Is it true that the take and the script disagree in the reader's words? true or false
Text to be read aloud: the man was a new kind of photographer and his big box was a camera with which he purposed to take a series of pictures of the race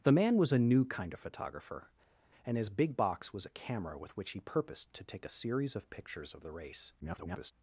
true